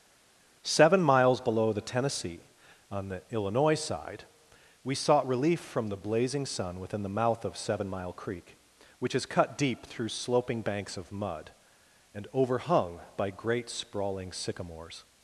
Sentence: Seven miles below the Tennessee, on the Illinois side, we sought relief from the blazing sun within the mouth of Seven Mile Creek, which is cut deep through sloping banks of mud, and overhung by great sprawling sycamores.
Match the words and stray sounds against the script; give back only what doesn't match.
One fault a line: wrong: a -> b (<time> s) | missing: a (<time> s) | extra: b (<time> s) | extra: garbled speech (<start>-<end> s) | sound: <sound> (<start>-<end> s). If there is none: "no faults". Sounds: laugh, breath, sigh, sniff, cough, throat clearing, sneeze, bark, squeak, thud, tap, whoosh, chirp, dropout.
no faults